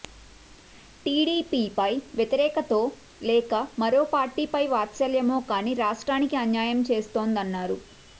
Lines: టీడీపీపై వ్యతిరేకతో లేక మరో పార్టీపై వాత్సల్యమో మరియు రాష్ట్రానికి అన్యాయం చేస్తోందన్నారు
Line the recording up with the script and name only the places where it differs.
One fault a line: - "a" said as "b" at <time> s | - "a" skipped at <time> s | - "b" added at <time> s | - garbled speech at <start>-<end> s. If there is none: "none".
- "మరియు" said as "కానీ" at 5.5 s